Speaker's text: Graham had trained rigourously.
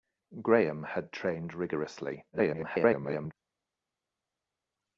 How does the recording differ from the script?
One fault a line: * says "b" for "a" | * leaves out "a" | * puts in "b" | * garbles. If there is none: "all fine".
* garbles